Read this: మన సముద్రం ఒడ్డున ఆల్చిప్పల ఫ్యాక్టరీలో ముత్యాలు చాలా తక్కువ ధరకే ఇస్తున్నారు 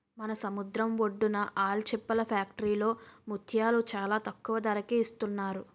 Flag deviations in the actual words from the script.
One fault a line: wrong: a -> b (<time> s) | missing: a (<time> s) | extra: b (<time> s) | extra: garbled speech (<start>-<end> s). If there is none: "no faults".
no faults